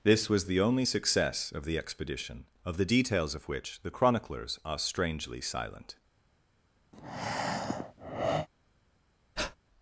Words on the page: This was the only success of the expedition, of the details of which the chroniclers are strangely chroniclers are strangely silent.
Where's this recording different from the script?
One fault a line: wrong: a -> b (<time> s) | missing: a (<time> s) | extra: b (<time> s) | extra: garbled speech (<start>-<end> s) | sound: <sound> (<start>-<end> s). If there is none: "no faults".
missing: chroniclers are strangely (5.4 s)
sound: breath (6.9-8.5 s)
sound: breath (9.4-9.6 s)